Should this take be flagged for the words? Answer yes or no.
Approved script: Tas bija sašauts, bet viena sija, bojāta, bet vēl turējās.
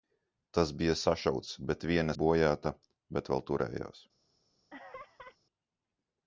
yes